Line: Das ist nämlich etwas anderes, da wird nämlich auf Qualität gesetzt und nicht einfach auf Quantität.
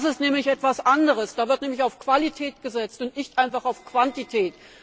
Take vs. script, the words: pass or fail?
pass